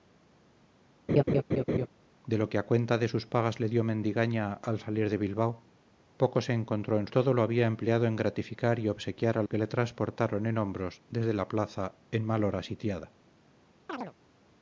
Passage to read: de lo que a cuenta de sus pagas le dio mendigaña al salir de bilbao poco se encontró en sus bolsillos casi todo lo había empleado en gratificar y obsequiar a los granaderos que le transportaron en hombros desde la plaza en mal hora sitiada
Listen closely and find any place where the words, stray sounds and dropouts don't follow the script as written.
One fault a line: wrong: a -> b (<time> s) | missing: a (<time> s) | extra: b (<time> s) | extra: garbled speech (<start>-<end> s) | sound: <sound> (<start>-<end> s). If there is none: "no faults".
sound: laugh (1.1-1.9 s)
missing: sus bolsillos casi (7.1 s)
missing: los granaderos (9.4 s)
sound: chirp (13.9-14.1 s)